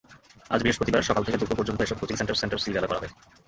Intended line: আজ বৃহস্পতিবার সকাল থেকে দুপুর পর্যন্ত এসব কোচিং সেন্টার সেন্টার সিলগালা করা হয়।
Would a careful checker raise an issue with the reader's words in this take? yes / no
no